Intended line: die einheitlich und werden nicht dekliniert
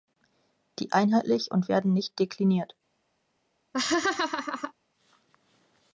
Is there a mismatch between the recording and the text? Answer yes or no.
no